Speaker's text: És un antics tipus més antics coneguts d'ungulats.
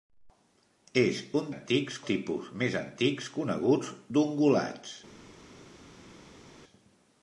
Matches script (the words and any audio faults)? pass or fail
pass